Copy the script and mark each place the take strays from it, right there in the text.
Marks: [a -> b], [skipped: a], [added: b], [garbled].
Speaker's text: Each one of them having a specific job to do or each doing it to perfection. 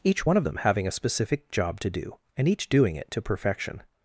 Each one of them having a specific job to do [or -> and] each doing it to perfection.